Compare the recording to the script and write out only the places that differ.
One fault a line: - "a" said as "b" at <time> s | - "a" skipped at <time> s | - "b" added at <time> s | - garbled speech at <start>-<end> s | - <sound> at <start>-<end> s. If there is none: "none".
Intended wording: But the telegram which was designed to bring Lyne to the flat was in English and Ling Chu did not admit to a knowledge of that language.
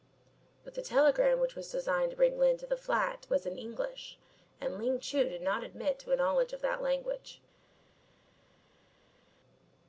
none